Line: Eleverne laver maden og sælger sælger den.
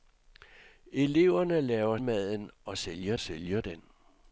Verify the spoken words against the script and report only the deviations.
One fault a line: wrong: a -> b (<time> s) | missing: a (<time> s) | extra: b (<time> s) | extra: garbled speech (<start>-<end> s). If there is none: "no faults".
no faults